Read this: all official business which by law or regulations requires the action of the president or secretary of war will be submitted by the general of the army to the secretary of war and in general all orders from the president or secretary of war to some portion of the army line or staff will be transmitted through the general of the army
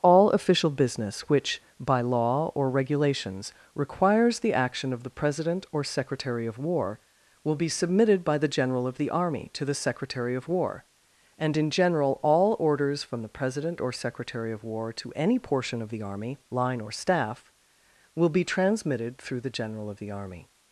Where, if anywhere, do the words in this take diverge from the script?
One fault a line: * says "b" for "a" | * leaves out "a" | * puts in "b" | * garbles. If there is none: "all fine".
* says "any" for "some"